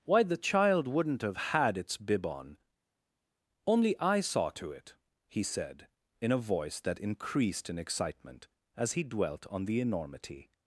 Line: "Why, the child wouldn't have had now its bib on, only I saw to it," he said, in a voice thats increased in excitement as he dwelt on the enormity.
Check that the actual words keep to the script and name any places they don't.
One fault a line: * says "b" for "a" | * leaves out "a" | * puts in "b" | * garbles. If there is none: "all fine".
* leaves out "now"
* says "that" for "thats"